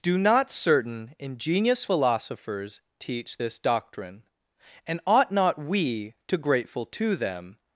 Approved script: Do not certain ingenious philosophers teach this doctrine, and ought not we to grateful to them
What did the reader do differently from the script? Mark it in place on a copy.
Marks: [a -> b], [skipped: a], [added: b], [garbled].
Do not certain ingenious philosophers teach this doctrine, and ought not we to grateful to them